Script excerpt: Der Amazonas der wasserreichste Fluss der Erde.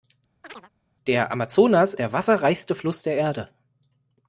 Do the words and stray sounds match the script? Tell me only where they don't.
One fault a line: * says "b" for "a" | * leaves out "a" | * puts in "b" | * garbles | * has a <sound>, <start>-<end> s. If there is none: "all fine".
* has a chirp, 0.4-0.7 s